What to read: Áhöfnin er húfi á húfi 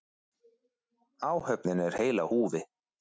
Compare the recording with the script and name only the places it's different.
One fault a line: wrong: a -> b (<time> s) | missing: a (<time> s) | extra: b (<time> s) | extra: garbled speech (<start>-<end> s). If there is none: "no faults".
wrong: húfi -> heil (2.0 s)